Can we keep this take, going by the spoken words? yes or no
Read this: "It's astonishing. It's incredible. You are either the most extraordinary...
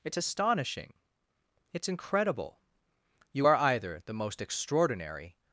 yes